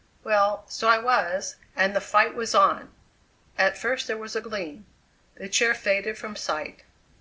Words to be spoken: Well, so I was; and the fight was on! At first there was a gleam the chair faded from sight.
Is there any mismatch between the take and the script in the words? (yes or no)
no